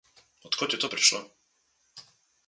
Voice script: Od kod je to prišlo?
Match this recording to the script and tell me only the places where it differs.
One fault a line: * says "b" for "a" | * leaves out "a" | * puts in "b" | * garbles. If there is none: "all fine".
all fine